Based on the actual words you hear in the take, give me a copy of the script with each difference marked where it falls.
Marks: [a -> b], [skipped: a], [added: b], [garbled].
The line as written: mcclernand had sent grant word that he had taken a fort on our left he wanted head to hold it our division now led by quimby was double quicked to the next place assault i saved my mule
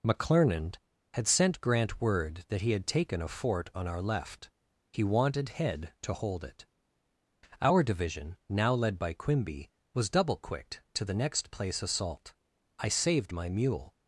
mcclernand had sent grant word that he had taken a fort on our left he wanted head to hold it our division now led by quimby was double quicked to the next place assault i saved my mule